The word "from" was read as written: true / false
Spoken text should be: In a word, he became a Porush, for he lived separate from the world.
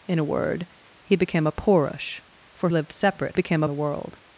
false